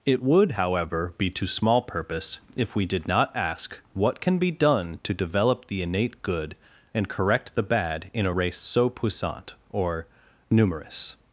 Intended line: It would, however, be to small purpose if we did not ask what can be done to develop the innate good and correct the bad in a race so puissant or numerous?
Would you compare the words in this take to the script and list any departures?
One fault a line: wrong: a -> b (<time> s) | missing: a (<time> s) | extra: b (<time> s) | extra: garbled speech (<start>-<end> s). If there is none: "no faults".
no faults